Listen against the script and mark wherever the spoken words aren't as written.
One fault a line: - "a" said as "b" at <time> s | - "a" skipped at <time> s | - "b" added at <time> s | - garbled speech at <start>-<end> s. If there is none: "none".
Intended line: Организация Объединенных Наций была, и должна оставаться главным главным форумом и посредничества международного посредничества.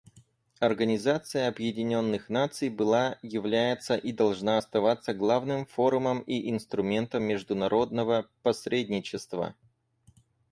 - "является" added at 3.2 s
- "главным" skipped at 5.7 s
- "посредничества" said as "инструментом" at 6.5 s